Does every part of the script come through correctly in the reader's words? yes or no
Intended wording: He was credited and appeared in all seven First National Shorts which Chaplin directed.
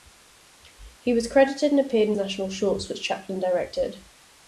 no